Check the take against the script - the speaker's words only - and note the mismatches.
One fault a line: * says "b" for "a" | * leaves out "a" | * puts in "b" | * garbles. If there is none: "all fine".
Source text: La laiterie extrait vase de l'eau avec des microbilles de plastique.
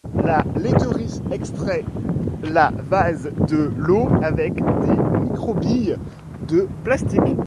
* puts in "la"